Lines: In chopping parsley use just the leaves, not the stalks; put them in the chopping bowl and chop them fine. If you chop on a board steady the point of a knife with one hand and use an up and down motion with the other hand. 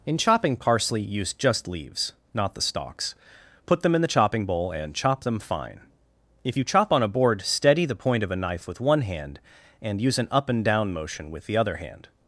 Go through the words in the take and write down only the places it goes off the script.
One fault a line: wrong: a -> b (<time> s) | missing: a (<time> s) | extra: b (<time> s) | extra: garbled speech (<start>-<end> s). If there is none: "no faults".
missing: the (1.7 s)